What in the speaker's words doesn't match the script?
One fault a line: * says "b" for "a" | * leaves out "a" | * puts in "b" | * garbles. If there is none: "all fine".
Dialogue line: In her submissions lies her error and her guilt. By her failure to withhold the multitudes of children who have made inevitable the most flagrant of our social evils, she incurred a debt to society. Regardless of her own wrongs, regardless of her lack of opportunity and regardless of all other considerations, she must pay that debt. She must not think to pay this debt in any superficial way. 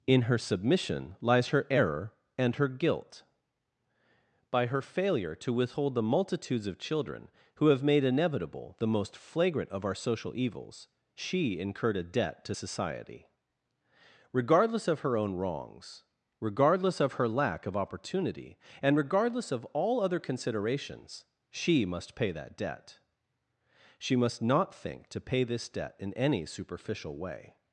* says "submission" for "submissions"